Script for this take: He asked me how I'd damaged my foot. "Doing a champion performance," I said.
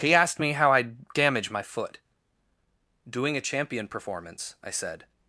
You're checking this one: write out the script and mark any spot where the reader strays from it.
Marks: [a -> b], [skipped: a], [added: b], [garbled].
He asked me how I'd [damaged -> damage] my foot. "Doing a champion performance," I said.